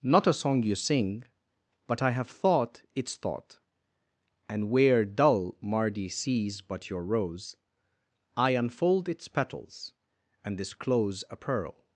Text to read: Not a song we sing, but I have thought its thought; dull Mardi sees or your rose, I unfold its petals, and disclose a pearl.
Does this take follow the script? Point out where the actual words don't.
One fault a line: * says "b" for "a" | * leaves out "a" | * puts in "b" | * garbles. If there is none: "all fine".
* says "you" for "we"
* puts in "and where"
* says "but" for "or"